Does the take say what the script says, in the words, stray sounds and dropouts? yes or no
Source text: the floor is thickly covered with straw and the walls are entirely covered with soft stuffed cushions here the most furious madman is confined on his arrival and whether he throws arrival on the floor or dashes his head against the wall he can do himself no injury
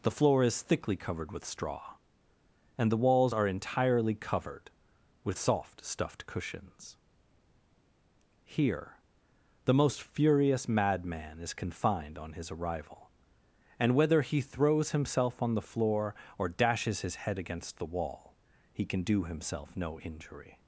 no